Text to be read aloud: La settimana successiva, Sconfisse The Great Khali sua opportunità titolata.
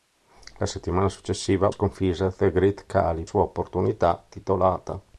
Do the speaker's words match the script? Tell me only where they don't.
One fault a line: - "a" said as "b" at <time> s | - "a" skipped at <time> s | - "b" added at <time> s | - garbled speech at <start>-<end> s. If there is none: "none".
none